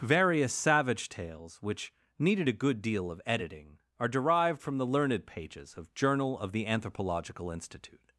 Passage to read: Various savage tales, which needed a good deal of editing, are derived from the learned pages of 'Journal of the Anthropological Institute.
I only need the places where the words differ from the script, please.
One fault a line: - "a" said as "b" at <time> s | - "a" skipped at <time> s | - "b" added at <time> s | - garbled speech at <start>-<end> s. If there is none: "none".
none